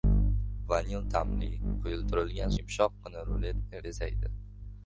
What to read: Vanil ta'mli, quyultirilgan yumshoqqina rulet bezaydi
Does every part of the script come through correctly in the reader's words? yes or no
yes